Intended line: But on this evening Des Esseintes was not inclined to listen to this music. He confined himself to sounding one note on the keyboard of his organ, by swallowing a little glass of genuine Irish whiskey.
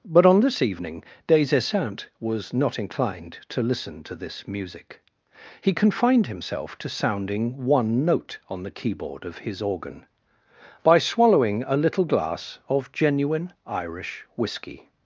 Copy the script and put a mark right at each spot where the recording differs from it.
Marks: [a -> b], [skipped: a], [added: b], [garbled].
But on this evening Des Esseintes was not inclined to listen to this music. He confined himself to sounding one note on the keyboard of his organ, by swallowing a little glass of genuine Irish whiskey.